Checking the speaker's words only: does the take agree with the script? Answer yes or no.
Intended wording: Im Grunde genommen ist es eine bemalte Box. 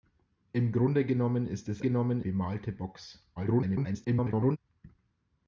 no